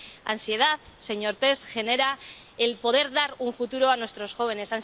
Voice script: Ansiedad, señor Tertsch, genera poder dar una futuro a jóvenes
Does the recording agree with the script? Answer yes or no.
no